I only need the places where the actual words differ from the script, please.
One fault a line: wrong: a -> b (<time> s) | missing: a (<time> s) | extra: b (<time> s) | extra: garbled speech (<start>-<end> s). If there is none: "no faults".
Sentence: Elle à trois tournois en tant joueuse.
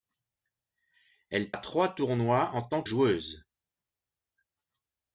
no faults